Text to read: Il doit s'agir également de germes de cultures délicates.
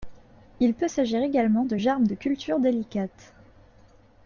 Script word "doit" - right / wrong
wrong